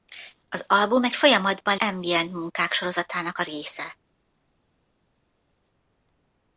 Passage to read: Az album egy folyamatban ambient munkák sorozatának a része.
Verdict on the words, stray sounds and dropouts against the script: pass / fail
pass